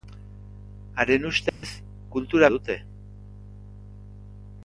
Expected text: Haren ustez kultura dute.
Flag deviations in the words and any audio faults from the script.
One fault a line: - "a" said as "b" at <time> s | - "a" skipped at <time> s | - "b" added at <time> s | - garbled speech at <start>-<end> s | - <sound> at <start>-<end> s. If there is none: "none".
- dropout at 1.5-1.6 s